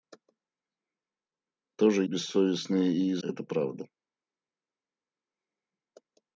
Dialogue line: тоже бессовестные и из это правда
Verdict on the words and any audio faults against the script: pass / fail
pass